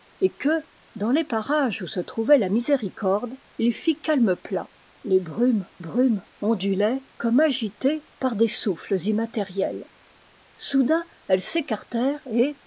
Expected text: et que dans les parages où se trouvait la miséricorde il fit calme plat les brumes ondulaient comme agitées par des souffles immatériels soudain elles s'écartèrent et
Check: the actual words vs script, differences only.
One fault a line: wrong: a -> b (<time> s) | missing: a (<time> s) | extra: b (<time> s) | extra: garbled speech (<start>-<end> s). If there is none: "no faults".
extra: brumes (5.8 s)